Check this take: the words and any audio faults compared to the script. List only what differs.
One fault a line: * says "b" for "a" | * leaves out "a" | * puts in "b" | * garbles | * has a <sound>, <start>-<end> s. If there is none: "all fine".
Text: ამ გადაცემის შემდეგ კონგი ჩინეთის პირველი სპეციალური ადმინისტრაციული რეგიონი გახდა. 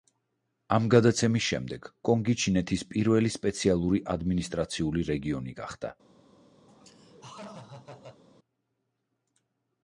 * has a laugh, 6.7-8.2 s